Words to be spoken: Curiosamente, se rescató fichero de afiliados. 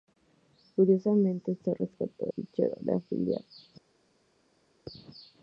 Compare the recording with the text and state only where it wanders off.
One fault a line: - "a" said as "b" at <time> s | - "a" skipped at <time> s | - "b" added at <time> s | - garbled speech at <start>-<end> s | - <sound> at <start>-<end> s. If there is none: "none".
none